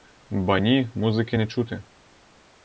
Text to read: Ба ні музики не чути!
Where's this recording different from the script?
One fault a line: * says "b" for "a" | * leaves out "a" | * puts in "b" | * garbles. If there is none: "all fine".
all fine